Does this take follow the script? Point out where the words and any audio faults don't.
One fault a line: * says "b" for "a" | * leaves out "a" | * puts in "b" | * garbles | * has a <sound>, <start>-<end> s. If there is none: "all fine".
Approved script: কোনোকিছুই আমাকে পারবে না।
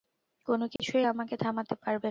* has a dropout, 0.8-0.8 s
* puts in "থামাতে"